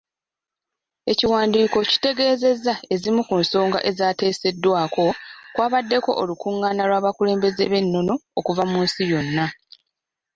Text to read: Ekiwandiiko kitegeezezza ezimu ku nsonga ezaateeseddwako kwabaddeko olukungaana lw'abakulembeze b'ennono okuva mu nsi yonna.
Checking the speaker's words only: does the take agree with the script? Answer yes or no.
yes